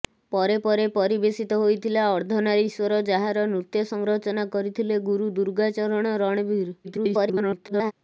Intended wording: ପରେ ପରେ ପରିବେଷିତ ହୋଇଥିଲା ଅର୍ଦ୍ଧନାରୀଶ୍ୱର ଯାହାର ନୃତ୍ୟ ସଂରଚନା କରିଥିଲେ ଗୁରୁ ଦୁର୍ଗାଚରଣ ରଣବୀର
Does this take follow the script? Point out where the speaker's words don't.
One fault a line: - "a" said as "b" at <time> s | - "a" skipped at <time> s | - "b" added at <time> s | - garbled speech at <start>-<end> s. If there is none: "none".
- garbled speech at 6.8-7.9 s